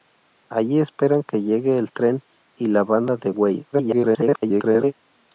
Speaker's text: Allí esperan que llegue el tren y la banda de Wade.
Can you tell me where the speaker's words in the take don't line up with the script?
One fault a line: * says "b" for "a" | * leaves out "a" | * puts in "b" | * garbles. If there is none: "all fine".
* garbles